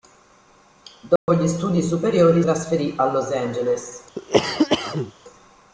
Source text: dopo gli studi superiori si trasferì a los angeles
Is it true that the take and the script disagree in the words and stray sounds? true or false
true